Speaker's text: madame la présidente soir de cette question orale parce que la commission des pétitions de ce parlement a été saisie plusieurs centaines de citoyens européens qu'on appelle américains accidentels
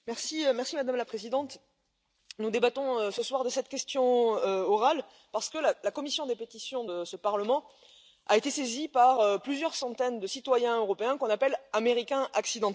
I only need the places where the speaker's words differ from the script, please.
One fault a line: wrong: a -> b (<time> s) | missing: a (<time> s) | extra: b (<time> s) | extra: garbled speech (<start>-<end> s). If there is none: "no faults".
extra: nous débattons ce (2.4 s)
extra: par (8.9 s)